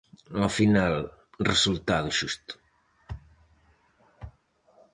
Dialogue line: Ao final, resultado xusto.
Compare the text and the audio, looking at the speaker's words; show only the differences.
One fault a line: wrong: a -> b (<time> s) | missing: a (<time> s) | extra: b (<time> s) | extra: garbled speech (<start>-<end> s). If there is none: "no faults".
no faults